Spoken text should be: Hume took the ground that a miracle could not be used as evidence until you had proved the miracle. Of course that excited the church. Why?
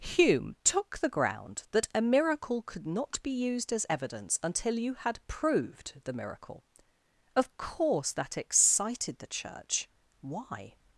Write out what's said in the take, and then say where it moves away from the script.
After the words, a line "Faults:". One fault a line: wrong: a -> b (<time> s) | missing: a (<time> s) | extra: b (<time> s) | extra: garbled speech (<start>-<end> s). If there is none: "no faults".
Hume took the ground that a miracle could not be used as evidence until you had proved the miracle. Of course that excited the church. Why?
Faults:
no faults